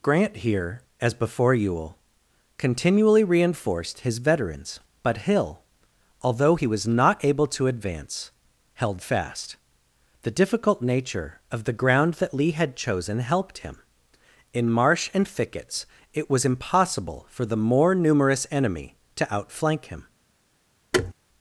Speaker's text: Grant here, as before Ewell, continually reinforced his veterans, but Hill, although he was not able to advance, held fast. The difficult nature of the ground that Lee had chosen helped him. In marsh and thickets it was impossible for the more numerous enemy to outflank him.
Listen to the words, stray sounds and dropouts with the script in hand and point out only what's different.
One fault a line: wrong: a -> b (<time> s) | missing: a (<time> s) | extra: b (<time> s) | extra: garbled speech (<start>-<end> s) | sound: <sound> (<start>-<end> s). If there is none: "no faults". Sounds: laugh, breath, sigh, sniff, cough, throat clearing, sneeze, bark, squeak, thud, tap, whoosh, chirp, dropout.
sound: thud (20.9-21.1 s)